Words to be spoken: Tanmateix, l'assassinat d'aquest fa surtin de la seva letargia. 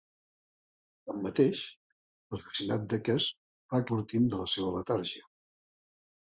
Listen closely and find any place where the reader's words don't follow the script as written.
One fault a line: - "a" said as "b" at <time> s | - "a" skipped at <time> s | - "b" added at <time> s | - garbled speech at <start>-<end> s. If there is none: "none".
none